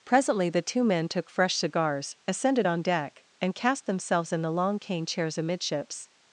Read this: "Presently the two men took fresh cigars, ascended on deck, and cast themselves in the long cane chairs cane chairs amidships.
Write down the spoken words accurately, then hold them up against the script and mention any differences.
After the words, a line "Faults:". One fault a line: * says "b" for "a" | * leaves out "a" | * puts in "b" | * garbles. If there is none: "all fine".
"Presently the two men took fresh cigars, ascended on deck, and cast themselves in the long cane chairs amidships.
Faults:
* leaves out "cane chairs"